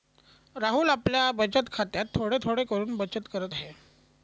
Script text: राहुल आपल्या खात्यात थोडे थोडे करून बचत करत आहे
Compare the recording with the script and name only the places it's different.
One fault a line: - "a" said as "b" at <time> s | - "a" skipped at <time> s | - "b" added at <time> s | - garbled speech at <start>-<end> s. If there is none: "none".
- "बचत" added at 1.3 s